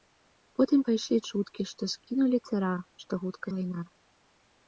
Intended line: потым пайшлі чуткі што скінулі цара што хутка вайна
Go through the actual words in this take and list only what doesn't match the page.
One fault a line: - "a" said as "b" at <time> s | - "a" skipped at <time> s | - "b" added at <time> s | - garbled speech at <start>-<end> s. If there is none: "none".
none